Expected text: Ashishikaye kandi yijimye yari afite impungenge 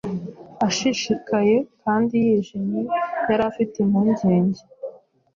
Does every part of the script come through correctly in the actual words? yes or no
yes